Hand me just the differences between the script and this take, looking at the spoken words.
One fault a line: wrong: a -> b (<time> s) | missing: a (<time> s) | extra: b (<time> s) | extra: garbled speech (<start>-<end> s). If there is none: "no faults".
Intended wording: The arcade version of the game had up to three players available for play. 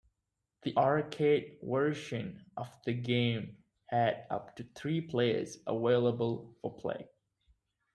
no faults